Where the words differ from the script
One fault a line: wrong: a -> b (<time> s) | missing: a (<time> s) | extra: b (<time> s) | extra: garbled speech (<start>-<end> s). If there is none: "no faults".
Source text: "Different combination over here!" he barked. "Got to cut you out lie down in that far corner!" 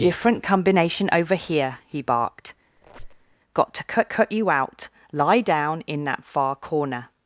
extra: cut (4.0 s)